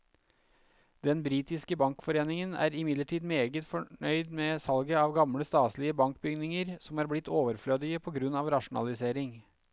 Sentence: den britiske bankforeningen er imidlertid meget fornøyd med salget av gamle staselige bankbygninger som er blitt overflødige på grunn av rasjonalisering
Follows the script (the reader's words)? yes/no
yes